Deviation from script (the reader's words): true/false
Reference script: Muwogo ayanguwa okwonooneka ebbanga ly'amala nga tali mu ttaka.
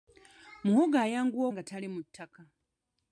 true